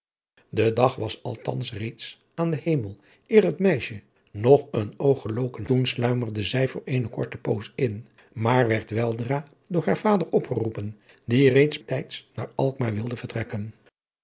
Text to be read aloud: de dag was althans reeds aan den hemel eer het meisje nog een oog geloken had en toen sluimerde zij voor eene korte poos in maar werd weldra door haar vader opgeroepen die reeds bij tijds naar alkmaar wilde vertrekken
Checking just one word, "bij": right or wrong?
wrong